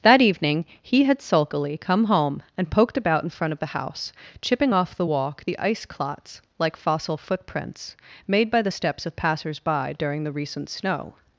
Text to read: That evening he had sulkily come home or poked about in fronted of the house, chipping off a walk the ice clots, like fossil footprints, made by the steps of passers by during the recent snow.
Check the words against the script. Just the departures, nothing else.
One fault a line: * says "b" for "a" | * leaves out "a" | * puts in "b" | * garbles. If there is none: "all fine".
* says "and" for "or"
* says "front" for "fronted"
* says "the" for "a"